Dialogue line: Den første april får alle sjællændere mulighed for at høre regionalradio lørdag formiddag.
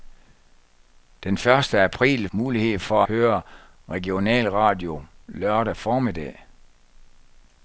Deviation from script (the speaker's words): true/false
true